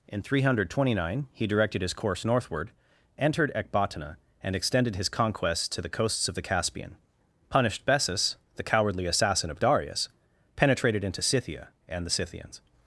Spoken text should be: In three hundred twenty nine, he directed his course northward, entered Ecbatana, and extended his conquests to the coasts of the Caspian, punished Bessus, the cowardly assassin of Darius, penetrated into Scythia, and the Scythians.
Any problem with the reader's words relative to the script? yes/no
no